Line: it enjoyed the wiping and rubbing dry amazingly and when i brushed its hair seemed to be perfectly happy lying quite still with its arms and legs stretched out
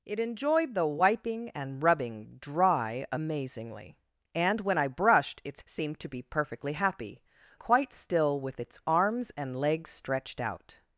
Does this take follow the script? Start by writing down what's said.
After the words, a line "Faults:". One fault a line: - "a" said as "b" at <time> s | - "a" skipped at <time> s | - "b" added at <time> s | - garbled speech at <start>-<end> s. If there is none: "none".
it enjoyed the wiping and rubbing dry amazingly and when i brushed its seemed to be perfectly happy quite still with its arms and legs stretched out
Faults:
- "hair" skipped at 5.6 s
- "lying" skipped at 7.2 s